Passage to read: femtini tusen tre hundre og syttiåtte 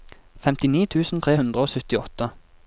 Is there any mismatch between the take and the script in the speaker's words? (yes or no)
no